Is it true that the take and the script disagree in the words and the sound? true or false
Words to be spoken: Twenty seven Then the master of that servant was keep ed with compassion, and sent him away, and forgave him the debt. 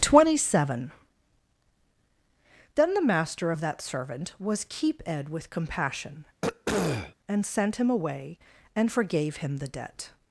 true